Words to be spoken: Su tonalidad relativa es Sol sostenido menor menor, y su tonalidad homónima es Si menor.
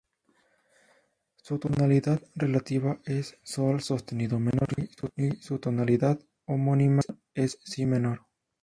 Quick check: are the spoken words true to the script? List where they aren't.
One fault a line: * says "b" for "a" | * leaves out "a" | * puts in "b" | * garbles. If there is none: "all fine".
* leaves out "menor"